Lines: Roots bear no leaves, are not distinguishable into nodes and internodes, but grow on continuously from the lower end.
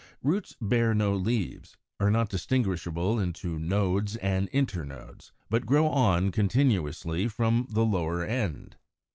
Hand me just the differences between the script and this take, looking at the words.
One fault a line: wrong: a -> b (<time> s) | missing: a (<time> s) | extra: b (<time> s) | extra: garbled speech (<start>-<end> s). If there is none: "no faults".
no faults